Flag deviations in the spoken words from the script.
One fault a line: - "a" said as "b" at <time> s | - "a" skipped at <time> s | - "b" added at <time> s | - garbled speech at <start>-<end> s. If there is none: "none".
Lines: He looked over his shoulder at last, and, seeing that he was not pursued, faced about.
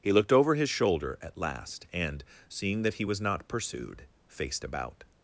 none